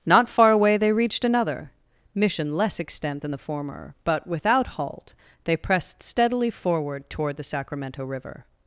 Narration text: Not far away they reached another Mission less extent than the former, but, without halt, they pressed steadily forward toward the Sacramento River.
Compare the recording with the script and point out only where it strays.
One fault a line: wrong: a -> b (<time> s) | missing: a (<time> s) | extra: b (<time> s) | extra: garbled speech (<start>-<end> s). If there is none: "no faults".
no faults